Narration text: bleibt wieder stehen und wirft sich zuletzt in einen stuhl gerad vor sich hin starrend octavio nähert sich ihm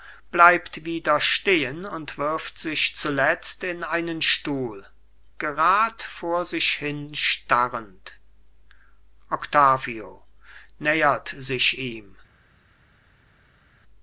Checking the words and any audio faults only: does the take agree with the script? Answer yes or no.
yes